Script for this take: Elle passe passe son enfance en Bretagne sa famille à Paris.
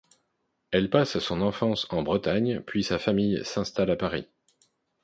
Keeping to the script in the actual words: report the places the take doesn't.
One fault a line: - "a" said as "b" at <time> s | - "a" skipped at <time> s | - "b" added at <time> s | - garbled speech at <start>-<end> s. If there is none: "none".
- "passe" skipped at 1.2 s
- "puis" added at 2.6 s
- "s'installe" added at 3.4 s